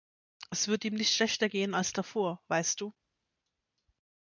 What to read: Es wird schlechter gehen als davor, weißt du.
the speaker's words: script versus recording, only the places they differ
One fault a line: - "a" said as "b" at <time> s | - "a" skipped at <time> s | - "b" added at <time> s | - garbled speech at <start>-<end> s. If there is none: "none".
- "ihm nicht" added at 0.8 s